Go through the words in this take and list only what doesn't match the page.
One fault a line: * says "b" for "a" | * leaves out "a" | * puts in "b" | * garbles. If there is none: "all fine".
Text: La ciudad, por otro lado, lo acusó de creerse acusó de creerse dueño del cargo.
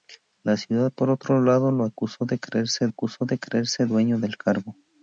all fine